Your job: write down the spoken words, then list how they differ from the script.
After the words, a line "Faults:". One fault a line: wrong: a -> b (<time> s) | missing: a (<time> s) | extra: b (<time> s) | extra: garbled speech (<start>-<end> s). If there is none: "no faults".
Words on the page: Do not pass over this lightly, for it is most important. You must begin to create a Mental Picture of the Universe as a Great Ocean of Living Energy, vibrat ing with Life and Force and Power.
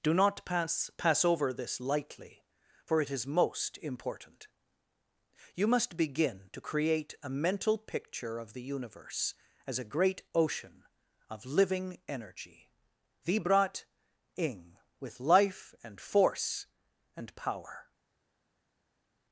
Do not pass pass over this lightly, for it is most important. You must begin to create a Mental Picture of the Universe as a Great Ocean of Living Energy, vibrat ing with Life and Force and Power.
Faults:
extra: pass (1.0 s)